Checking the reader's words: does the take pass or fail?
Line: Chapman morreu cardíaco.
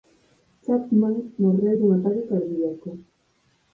fail